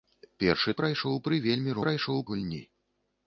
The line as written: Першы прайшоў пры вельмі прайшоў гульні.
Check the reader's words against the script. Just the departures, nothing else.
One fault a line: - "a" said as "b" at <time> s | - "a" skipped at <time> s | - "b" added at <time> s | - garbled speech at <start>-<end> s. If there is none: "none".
none